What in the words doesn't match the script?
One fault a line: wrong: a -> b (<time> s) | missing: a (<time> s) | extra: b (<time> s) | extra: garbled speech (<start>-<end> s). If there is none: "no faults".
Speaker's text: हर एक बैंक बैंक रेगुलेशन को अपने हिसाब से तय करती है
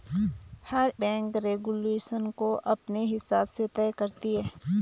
missing: एक बैंक (0.9 s)